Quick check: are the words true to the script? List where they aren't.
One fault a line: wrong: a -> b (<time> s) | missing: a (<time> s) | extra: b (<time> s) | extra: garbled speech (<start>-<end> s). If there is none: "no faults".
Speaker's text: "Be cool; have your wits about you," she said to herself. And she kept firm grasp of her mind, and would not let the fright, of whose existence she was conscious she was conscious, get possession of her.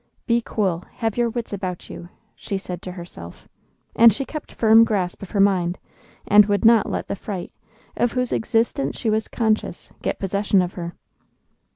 missing: she was conscious (9.9 s)